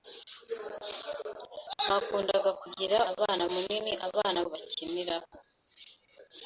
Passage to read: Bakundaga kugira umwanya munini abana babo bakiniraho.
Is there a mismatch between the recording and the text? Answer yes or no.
yes